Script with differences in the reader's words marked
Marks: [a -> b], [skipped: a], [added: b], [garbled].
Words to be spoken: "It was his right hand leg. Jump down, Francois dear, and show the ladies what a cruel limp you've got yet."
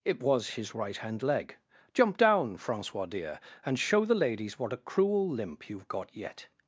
"It was his right hand leg. Jump down, Francois dear, and show the ladies what a cruel limp you've got yet."